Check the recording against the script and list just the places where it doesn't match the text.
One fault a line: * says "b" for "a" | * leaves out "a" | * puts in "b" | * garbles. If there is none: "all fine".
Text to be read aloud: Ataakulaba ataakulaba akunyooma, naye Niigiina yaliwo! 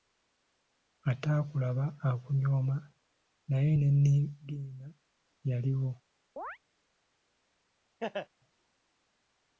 * leaves out "ataakulaba"
* puts in "ne"